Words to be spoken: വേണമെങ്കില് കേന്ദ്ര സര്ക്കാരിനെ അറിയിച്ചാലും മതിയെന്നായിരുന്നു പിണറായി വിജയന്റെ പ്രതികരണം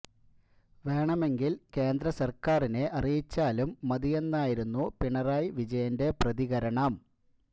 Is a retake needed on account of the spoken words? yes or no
no